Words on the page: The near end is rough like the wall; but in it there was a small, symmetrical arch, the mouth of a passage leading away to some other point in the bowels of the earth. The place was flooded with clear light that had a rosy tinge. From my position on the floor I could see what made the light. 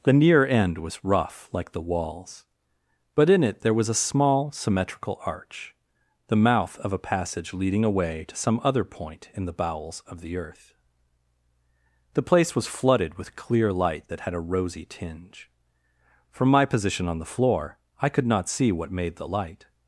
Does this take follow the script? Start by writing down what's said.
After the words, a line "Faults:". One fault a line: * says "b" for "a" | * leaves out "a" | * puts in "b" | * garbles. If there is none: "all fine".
The near end was rough like the walls; but in it there was a small, symmetrical arch, the mouth of a passage leading away to some other point in the bowels of the earth. The place was flooded with clear light that had a rosy tinge. From my position on the floor I could not see what made the light.
Faults:
* says "was" for "is"
* says "walls" for "wall"
* puts in "not"